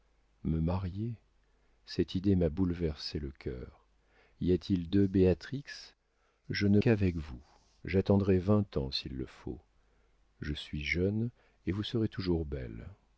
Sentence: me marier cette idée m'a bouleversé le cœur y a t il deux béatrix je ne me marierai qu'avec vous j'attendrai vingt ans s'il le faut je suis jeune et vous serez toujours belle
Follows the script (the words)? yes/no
no